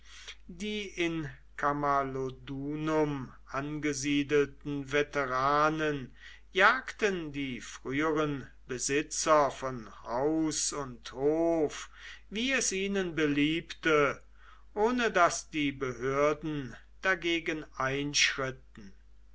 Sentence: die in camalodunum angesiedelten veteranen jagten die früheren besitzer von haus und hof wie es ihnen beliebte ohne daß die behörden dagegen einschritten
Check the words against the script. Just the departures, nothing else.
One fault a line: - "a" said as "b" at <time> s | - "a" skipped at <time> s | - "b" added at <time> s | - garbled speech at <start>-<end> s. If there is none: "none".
none